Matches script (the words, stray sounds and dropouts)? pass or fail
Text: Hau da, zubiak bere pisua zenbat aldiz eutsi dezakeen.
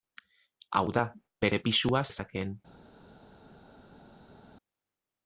fail